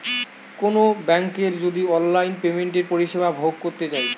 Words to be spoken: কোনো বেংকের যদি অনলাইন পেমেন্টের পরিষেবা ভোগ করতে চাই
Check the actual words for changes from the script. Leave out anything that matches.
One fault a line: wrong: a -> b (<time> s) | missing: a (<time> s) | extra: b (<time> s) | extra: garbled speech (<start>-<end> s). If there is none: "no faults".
no faults